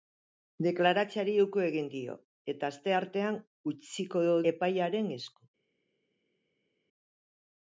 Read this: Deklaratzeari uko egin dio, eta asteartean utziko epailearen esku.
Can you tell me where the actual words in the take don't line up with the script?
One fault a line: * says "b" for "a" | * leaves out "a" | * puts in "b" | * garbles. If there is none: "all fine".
all fine